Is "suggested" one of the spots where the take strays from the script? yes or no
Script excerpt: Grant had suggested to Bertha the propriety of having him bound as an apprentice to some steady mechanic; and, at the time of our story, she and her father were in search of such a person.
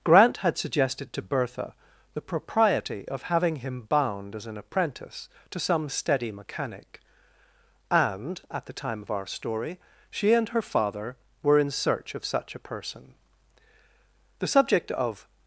no